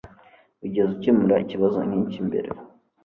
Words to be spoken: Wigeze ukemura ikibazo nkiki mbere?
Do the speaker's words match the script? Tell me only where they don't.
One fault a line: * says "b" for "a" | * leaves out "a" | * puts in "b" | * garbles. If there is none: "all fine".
all fine